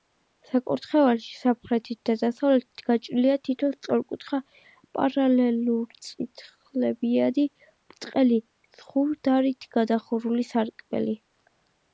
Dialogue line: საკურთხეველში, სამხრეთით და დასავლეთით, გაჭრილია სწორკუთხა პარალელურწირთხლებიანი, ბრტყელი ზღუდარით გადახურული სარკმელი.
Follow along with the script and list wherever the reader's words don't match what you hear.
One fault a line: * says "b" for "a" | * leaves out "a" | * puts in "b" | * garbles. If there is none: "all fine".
* puts in "თითო"